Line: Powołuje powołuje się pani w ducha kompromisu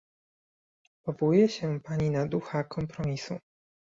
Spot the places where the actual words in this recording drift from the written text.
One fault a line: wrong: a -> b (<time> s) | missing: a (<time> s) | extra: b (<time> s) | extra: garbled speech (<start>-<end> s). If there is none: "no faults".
missing: powołuje (1.5 s)
wrong: w -> na (2.1 s)